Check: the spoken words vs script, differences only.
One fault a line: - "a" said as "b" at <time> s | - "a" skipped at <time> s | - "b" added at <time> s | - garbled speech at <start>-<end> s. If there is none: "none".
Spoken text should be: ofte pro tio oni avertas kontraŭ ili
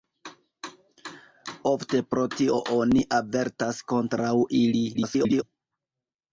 - garbled speech at 4.9-5.4 s